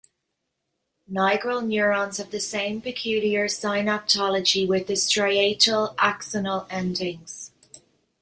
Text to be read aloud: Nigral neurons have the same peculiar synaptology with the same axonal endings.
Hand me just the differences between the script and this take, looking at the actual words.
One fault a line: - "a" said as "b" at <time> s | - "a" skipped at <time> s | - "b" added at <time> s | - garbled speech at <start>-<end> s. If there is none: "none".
- "same" said as "striatal" at 5.0 s